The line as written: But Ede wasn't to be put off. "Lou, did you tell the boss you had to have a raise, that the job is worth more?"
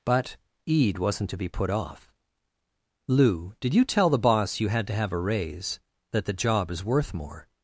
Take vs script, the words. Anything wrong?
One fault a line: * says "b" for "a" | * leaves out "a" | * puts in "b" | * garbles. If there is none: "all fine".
all fine